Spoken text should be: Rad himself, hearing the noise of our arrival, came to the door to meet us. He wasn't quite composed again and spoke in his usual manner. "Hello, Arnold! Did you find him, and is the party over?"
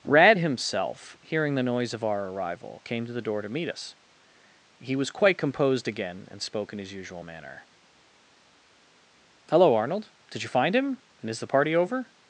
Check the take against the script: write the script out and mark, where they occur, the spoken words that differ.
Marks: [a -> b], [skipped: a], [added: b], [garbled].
Rad himself, hearing the noise of our arrival, came to the door to meet us. He [wasn't -> was] quite composed again and spoke in his usual manner. "Hello, Arnold! Did you find him, and is the party over?"